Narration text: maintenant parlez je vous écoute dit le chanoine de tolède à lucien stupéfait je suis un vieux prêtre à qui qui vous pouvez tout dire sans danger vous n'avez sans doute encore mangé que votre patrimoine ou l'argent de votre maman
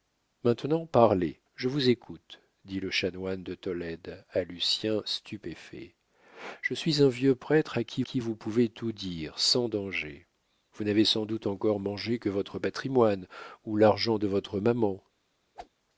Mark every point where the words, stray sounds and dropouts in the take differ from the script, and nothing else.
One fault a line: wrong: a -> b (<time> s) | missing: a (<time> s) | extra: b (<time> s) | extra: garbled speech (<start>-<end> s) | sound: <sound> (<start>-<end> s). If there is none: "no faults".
sound: whoosh (15.5-15.7 s)